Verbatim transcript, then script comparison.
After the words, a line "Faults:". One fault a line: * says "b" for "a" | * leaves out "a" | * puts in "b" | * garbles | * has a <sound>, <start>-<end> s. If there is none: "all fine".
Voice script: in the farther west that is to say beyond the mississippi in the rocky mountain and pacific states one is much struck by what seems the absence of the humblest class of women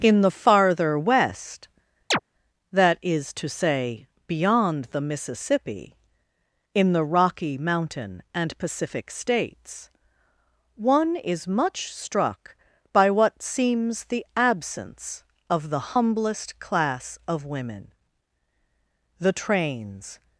in the farther west that is to say beyond the mississippi in the rocky mountain and pacific states one is much struck by what seems the absence of the humblest class of women the trains
Faults:
* has a chirp, 2.1-2.2 s
* puts in "the trains"